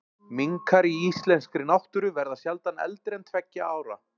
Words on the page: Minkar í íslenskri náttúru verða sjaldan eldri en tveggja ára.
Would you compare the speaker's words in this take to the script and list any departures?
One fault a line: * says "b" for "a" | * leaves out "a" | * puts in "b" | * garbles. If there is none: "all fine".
all fine